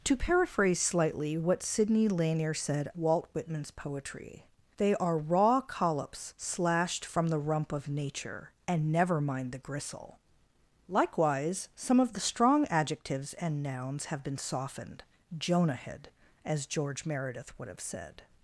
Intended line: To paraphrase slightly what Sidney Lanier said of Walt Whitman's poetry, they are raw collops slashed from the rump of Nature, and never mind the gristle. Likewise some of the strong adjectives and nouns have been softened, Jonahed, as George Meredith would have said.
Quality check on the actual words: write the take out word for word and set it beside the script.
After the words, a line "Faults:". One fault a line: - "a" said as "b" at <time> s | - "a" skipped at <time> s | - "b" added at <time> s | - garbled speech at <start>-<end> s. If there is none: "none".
To paraphrase slightly what Sidney Lanier said Walt Whitman's poetry, they are raw collops slashed from the rump of Nature, and never mind the gristle. Likewise some of the strong adjectives and nouns have been softened, Jonahed, as George Meredith would have said.
Faults:
- "of" skipped at 2.9 s